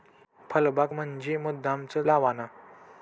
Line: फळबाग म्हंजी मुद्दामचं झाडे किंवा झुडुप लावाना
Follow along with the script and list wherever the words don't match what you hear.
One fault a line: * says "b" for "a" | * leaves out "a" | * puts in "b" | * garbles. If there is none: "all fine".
* leaves out "झाडे किंवा झुडुप"